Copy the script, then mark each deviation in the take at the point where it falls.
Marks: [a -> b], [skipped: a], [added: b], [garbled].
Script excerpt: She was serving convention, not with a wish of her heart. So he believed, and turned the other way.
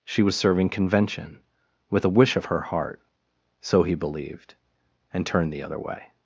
She was serving convention, [skipped: not] with a wish of her heart. So he believed, and turned the other way.